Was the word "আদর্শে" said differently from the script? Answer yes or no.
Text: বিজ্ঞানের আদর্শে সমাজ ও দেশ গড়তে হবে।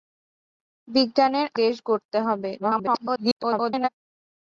yes